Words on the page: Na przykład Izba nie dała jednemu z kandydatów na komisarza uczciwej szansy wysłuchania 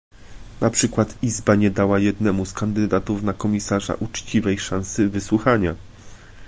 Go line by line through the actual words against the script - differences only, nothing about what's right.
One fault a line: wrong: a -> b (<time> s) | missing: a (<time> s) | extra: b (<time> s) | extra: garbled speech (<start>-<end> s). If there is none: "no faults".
no faults